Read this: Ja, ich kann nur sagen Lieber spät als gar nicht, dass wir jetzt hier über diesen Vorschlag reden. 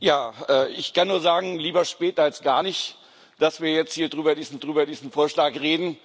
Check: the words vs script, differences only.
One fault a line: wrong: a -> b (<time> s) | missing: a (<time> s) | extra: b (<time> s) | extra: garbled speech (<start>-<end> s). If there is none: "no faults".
extra: über diesen (4.6 s)